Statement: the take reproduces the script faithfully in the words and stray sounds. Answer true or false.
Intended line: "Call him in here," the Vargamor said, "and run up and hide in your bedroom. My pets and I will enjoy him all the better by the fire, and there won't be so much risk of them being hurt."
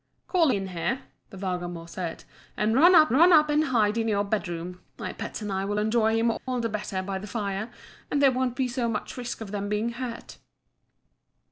false